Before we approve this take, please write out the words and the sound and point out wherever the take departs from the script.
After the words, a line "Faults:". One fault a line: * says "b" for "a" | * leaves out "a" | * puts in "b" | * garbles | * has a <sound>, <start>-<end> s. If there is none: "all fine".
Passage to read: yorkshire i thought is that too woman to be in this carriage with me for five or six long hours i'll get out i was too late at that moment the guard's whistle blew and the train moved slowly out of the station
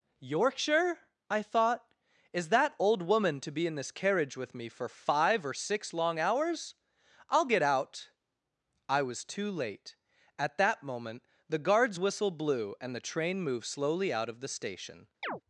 yorkshire i thought is that old woman to be in this carriage with me for five or six long hours i'll get out i was too late at that moment the guard's whistle blew and the train moved slowly out of the station
Faults:
* says "old" for "too"
* has a chirp, 15.2-15.4 s